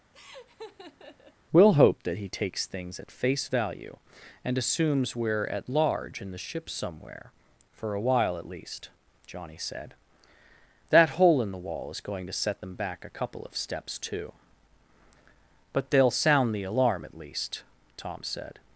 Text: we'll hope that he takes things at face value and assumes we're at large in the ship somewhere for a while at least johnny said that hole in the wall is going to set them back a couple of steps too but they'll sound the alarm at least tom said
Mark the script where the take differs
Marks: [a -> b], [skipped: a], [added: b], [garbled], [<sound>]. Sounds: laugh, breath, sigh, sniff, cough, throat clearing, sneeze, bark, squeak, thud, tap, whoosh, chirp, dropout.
[laugh] we'll hope that he takes things at face value and assumes we're at large in the ship somewhere for a while at least johnny said that hole in the wall is going to set them back a couple of steps too but they'll sound the alarm at least tom said